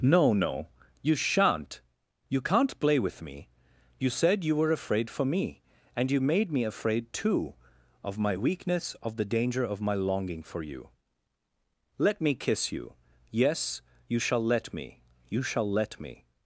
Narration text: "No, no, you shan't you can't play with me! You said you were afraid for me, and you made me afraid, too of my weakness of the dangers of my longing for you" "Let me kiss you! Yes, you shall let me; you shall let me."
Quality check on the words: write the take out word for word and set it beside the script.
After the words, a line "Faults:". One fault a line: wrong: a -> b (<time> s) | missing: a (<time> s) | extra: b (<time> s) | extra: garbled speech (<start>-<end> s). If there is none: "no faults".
"No, no, you shan't you can't play with me! You said you were afraid for me, and you made me afraid, too of my weakness of the danger of my longing for you" "Let me kiss you! Yes, you shall let me; you shall let me."
Faults:
wrong: dangers -> danger (9.2 s)